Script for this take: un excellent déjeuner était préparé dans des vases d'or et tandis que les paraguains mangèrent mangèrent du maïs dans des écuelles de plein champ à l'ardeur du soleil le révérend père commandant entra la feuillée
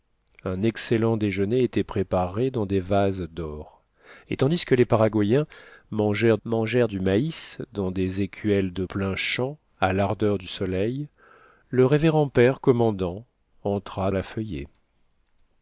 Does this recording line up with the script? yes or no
yes